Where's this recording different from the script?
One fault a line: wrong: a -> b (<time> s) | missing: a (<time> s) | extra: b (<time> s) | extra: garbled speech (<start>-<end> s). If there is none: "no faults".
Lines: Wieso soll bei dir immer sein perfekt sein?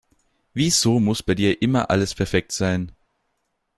wrong: soll -> muss (1.0 s)
wrong: sein -> alles (1.9 s)